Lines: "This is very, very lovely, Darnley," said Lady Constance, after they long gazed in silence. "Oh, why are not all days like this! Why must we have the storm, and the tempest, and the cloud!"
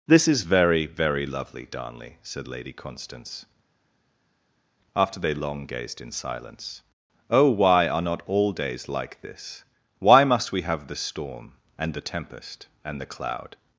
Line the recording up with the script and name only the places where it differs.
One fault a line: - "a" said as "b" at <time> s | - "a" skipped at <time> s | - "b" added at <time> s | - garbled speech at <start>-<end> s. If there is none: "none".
none